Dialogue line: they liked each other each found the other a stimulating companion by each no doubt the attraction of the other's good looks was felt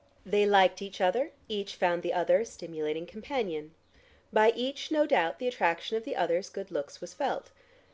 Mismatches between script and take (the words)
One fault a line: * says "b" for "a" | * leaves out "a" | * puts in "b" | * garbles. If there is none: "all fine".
all fine